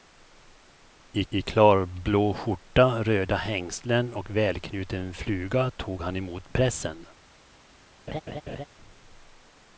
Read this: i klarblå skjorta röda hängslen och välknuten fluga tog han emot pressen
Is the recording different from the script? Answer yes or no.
yes